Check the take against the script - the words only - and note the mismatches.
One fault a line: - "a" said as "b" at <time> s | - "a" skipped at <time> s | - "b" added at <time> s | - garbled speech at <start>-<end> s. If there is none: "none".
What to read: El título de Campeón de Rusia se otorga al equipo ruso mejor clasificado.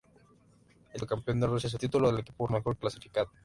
- "título" skipped at 1.0 s
- "otorga" said as "título" at 1.8 s
- "ruso" skipped at 2.5 s